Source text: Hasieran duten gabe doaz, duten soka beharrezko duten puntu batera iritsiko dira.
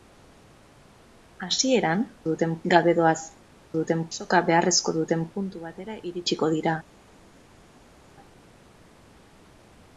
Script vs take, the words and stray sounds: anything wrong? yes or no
no